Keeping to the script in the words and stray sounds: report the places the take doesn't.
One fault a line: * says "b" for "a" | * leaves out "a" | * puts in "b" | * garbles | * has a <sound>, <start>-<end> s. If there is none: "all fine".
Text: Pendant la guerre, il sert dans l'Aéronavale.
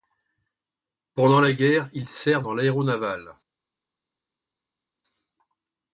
all fine